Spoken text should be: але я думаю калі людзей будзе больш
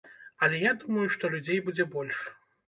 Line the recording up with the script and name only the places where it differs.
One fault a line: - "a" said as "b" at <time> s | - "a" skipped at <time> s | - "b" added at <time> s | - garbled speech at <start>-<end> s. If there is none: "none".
- "калі" said as "што" at 1.2 s